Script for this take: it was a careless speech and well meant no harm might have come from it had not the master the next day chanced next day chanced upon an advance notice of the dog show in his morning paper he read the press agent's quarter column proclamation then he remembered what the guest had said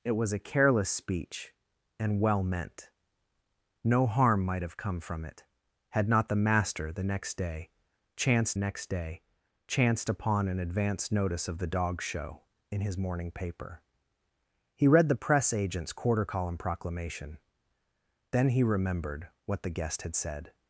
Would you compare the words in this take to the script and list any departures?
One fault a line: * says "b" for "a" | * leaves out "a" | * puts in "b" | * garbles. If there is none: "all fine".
all fine